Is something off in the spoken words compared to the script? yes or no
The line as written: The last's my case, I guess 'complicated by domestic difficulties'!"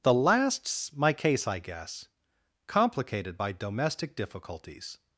no